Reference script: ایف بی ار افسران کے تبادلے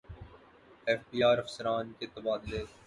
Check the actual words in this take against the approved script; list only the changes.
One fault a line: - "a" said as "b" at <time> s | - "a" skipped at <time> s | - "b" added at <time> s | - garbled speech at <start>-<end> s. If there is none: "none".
none